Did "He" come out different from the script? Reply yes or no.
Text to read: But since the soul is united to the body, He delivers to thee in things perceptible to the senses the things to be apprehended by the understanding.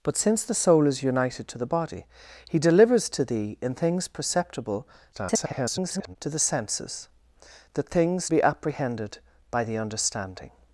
no